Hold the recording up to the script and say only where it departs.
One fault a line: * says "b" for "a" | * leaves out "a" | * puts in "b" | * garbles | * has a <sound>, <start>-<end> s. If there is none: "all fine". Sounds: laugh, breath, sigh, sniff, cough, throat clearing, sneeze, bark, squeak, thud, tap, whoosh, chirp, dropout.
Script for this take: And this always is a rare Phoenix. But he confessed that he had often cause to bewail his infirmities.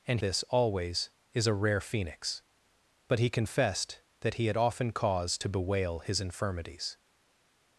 all fine